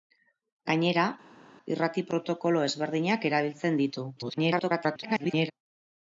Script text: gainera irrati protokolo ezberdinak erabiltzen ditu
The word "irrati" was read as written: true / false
true